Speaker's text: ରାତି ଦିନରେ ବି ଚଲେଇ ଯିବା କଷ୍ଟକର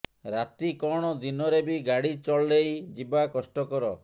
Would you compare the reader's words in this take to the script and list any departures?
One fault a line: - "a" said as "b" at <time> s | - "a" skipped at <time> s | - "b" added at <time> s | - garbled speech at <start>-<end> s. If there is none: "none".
- "କଣ" added at 0.8 s
- "ଗାଡ଼ି" added at 1.9 s